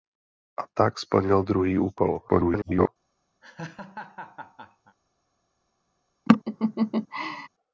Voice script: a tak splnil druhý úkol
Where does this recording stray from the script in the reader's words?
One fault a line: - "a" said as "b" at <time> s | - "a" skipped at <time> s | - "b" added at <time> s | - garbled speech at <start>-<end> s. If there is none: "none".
- garbled speech at 2.3-2.9 s